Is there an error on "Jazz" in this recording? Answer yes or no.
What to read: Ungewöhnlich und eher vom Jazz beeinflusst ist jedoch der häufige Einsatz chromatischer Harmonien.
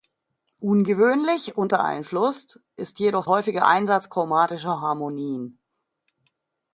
yes